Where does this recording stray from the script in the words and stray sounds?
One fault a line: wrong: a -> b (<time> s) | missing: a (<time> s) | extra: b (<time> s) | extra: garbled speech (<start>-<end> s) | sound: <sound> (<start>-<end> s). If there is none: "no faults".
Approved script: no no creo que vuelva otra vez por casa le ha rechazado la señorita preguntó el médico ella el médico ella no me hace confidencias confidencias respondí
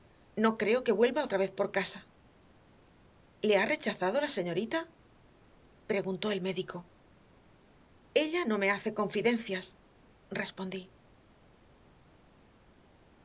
missing: no (0.6 s)
missing: el médico ella (8.4 s)
missing: confidencias (9.8 s)